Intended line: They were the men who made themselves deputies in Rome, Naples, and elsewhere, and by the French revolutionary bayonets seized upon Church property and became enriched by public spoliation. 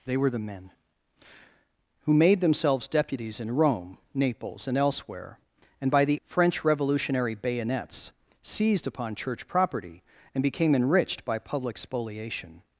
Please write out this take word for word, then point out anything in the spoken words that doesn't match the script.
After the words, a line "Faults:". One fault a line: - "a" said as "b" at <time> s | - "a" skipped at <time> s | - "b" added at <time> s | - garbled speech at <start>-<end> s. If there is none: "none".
They were the men who made themselves deputies in Rome, Naples, and elsewhere, and by the French revolutionary bayonets seized upon Church property and became enriched by public spoliation.
Faults:
none